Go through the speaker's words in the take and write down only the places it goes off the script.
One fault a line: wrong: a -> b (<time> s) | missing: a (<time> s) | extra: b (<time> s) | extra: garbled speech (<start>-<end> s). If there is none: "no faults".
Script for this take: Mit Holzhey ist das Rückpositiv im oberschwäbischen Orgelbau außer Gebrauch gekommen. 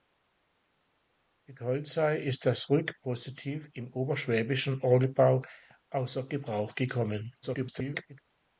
extra: garbled speech (7.4-8.2 s)